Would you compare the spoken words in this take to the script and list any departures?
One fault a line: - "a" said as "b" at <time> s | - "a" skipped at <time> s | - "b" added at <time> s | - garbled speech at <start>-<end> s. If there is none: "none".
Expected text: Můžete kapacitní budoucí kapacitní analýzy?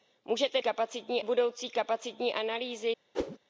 none